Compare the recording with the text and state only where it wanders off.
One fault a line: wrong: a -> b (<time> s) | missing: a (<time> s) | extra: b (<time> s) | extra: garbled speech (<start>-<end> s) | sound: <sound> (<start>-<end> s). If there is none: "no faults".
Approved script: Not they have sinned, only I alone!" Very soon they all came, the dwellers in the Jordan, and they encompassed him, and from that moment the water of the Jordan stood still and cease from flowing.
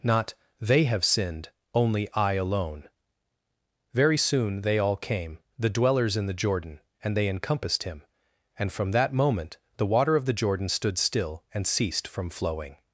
wrong: cease -> ceased (11.7 s)